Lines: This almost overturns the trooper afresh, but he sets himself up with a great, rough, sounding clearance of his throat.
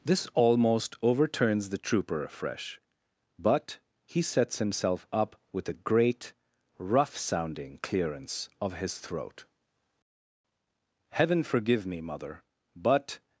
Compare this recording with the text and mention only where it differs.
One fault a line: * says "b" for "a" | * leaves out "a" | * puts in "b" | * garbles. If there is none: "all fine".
* puts in "Heaven forgive me mother but"